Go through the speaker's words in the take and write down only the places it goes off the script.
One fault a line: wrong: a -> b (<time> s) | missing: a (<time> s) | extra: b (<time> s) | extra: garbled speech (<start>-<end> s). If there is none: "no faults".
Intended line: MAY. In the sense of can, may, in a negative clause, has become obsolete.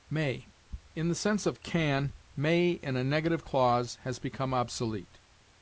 no faults